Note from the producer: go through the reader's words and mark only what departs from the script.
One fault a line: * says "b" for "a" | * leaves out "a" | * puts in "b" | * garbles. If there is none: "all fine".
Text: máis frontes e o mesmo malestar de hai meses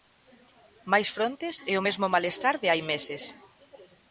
all fine